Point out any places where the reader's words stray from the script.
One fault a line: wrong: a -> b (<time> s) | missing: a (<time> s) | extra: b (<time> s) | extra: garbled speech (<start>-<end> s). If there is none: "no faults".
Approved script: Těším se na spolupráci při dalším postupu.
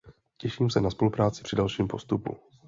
no faults